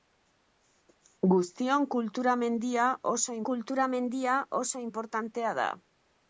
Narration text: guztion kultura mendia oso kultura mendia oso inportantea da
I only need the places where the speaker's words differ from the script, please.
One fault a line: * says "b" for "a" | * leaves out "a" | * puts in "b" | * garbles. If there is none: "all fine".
all fine